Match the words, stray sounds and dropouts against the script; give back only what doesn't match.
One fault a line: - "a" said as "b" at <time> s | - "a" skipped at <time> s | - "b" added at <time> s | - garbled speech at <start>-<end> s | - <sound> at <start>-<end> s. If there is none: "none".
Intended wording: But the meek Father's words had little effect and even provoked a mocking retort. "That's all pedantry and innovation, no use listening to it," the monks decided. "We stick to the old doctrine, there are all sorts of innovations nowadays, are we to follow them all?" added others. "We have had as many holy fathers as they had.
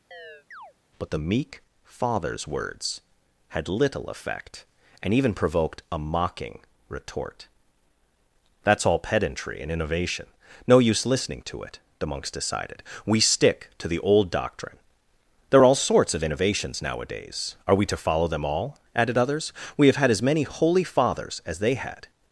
- chirp at 0.1-0.7 s